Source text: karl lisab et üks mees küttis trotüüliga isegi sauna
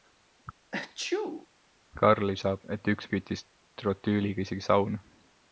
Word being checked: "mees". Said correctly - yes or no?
no